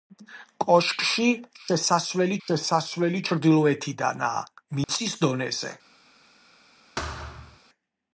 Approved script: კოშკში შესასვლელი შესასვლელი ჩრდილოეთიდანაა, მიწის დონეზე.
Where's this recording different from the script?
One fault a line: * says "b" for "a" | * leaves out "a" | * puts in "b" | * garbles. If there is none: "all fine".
all fine